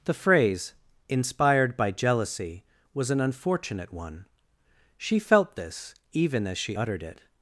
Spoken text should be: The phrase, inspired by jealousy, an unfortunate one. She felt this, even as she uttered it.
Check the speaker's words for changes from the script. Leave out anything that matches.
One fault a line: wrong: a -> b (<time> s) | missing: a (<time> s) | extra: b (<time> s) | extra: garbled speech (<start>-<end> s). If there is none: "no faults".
extra: was (2.9 s)